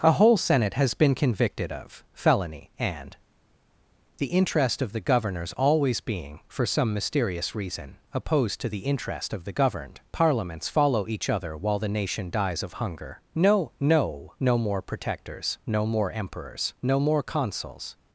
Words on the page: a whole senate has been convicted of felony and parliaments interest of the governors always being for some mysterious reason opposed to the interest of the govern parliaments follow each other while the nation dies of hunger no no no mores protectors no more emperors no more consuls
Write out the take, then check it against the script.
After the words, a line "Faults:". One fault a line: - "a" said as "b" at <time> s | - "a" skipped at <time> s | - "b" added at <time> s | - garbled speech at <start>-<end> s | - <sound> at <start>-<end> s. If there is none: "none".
a whole senate has been convicted of felony and the interest of the governors always being for some mysterious reason opposed to the interest of the governed parliaments follow each other while the nation dies of hunger no no no more protectors no more emperors no more consuls
Faults:
- "parliaments" said as "the" at 4.2 s
- "govern" said as "governed" at 9.5 s
- "mores" said as "more" at 14.6 s